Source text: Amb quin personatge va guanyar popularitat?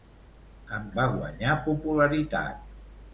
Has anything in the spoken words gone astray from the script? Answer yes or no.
yes